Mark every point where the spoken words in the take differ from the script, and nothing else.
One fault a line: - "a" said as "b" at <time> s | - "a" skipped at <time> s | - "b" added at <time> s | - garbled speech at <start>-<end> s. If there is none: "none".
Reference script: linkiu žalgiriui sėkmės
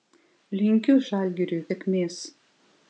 none